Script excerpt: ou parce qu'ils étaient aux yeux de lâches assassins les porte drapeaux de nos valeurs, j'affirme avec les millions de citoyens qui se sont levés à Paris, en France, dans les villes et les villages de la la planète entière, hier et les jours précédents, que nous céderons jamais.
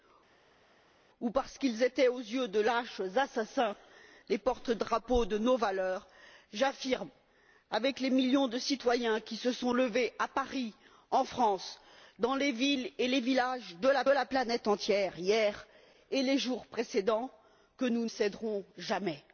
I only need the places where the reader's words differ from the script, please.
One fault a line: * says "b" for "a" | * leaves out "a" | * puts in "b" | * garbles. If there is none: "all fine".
all fine